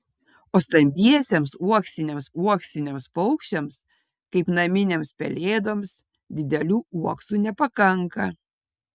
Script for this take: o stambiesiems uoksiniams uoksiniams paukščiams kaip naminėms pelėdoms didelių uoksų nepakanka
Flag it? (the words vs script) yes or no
no